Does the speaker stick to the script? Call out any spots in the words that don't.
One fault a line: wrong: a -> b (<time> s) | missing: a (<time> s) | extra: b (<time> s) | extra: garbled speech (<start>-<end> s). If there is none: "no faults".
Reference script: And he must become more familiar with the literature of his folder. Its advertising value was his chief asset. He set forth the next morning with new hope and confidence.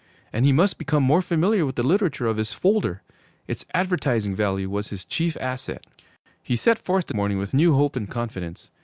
missing: next (7.1 s)